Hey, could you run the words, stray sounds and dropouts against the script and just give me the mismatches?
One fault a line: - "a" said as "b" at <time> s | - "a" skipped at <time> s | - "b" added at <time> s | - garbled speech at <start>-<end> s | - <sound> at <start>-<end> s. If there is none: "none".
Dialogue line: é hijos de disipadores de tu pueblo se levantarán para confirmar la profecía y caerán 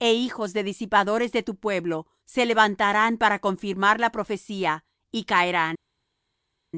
none